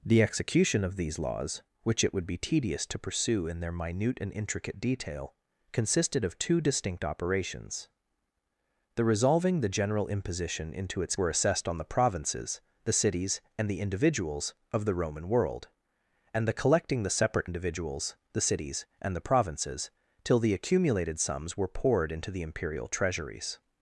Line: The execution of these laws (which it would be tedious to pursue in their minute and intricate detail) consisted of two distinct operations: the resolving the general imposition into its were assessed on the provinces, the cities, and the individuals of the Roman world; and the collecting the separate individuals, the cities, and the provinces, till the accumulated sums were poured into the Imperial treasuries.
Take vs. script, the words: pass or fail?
pass